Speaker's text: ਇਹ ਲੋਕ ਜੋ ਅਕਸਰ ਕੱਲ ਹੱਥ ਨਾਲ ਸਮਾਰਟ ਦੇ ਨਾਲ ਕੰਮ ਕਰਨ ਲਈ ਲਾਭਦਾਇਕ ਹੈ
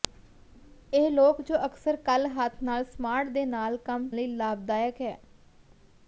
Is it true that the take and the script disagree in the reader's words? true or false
true